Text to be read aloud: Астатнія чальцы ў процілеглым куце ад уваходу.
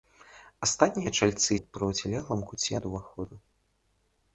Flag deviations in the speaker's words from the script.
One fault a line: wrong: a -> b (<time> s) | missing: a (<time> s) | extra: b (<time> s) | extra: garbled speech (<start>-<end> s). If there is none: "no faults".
no faults